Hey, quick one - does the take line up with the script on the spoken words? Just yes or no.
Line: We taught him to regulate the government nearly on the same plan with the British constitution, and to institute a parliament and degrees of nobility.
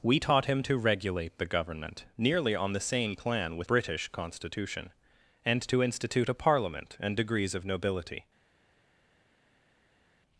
no